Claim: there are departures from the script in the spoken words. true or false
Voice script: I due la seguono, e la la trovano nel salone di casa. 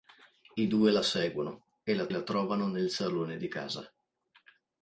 false